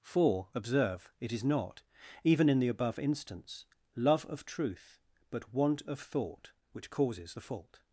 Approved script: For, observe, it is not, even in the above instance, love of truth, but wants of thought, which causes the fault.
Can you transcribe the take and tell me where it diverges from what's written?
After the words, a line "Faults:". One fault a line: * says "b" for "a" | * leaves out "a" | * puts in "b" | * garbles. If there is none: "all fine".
For, observe, it is not, even in the above instance, love of truth, but want of thought, which causes the fault.
Faults:
* says "want" for "wants"